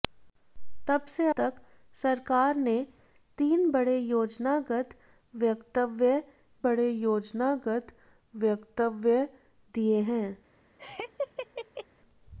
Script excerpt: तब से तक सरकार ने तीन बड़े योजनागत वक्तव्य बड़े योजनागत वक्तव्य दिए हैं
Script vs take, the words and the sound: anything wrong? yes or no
yes